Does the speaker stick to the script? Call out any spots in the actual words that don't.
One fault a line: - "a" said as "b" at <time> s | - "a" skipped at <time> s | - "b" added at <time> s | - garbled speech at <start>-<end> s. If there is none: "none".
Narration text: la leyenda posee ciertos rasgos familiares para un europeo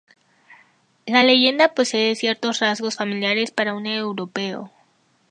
none